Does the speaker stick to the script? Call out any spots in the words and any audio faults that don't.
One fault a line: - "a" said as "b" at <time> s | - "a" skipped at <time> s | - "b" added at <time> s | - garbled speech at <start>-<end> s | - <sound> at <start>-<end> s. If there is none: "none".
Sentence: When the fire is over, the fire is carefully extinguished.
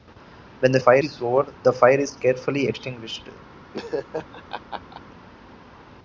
- laugh at 3.7-5.0 s